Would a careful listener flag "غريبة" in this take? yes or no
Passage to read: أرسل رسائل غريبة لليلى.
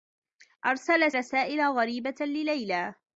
no